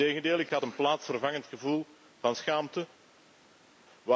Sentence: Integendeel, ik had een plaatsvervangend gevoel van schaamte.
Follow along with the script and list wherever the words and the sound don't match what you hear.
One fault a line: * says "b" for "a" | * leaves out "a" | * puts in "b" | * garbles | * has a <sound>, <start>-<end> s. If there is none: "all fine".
all fine